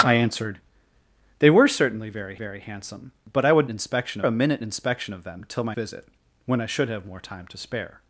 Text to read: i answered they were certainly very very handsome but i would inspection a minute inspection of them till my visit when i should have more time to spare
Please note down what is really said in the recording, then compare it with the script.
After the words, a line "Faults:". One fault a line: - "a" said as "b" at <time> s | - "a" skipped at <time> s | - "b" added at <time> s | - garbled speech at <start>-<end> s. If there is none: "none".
i answered they were certainly very very handsome but i would inspection a minute inspection of them till my visit when i should have more time to spare
Faults:
none